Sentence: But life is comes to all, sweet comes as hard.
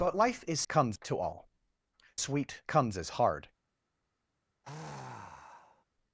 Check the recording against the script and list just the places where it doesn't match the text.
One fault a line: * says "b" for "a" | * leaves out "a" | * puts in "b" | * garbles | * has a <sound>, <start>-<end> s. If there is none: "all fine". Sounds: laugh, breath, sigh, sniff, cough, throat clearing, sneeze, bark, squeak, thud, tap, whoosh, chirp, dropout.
* has a sigh, 4.6-5.8 s